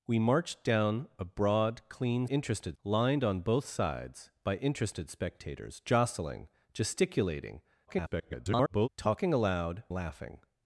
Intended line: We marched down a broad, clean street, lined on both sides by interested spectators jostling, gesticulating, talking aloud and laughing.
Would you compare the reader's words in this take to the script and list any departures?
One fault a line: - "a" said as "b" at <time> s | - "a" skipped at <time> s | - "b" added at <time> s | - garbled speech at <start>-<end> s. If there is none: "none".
- "street" said as "interested" at 2.2 s
- garbled speech at 7.9-8.9 s
- "and" skipped at 9.8 s